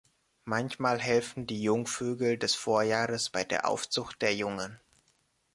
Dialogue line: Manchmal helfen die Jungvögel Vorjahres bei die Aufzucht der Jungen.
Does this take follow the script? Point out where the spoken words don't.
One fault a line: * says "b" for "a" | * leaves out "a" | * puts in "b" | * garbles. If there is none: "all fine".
* puts in "des"
* says "der" for "die"